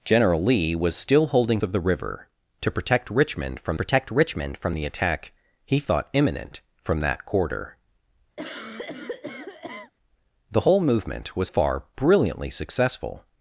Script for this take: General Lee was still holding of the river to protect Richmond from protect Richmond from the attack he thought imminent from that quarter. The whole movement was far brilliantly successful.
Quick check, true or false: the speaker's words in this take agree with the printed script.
true